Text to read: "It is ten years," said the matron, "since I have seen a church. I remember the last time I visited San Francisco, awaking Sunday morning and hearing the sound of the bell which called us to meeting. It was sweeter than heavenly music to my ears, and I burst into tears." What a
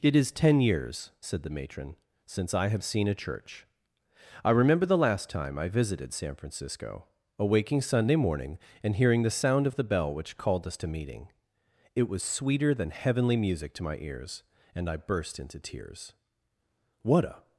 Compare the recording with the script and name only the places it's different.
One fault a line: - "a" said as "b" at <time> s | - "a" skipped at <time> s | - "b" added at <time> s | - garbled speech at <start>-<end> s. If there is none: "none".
none